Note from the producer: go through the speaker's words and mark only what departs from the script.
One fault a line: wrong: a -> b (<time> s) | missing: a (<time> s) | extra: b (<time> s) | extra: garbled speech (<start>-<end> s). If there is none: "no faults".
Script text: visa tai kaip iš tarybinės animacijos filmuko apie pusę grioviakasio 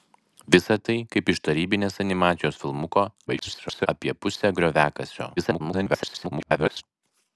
extra: garbled speech (3.3-3.9 s)
extra: garbled speech (5.4-6.8 s)